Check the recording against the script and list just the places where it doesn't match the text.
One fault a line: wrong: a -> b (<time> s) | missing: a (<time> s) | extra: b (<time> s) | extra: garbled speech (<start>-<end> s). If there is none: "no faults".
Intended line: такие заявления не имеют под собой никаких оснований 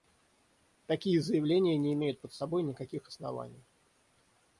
no faults